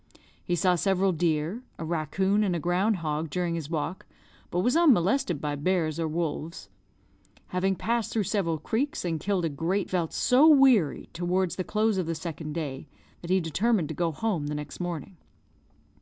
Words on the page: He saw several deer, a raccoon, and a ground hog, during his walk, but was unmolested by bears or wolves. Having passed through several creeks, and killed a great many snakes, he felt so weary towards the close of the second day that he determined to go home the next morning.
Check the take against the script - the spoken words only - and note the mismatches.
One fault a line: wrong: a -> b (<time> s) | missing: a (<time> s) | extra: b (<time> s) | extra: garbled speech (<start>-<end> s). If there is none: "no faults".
missing: many snakes he (9.9 s)